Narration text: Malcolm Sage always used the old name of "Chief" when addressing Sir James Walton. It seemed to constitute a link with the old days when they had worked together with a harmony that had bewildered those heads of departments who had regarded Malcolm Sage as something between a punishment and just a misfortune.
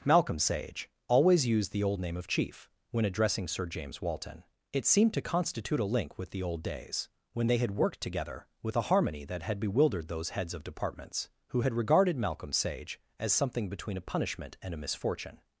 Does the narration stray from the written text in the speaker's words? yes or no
yes